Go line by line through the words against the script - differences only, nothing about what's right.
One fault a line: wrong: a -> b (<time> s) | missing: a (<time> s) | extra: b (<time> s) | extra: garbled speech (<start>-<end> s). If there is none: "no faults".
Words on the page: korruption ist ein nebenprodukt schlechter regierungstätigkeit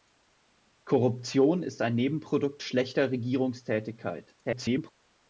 extra: garbled speech (4.4-4.9 s)